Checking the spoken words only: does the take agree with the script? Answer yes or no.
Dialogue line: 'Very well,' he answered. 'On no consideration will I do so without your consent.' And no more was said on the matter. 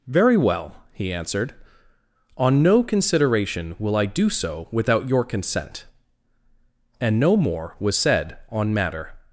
no